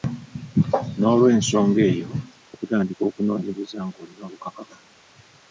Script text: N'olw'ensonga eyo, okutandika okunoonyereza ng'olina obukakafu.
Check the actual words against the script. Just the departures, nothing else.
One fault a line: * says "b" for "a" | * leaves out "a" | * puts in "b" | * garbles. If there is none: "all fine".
all fine